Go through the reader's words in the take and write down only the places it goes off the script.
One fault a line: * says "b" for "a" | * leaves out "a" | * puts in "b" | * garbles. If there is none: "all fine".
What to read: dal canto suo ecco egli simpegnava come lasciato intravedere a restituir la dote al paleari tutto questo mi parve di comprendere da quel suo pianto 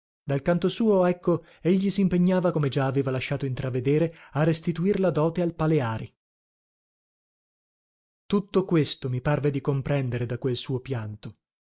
* puts in "già aveva"